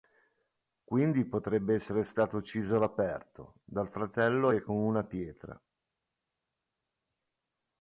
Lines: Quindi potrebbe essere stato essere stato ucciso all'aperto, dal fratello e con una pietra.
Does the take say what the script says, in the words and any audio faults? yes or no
no